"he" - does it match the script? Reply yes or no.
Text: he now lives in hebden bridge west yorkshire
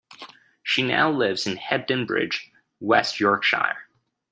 no